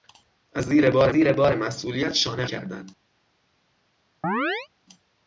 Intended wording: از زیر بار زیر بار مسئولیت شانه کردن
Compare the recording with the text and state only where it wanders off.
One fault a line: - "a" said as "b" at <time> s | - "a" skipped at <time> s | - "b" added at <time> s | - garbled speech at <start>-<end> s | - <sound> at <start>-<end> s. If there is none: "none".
- chirp at 4.2-4.7 s